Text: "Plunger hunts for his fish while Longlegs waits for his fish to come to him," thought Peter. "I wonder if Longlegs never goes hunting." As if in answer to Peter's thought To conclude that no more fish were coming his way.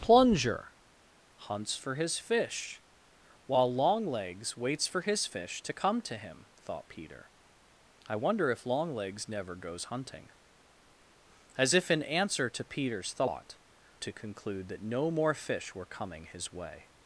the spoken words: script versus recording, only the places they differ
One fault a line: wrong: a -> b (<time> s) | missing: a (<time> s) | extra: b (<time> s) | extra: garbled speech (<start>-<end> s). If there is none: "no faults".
no faults